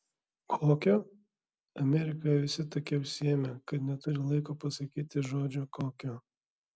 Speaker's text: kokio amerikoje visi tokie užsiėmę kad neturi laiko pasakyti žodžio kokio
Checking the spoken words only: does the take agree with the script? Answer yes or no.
yes